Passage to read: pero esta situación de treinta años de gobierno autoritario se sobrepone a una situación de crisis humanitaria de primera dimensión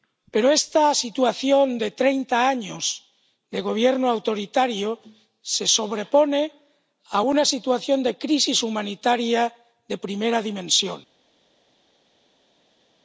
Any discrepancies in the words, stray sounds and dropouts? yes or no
no